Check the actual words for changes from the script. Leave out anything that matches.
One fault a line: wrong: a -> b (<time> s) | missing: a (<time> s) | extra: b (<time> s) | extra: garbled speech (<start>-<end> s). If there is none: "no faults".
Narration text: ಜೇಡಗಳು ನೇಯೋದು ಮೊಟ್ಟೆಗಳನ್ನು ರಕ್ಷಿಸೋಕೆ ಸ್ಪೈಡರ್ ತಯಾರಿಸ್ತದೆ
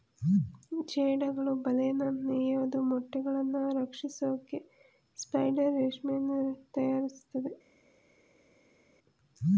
extra: ಬಲೆನ (1.6 s)
extra: ರೇಷ್ಮೆಯನ್ನು (5.8 s)